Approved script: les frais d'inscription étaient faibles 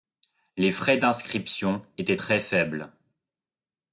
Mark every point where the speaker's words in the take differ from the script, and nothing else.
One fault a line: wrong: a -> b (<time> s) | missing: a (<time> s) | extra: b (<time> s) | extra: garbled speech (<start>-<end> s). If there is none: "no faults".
extra: très (2.1 s)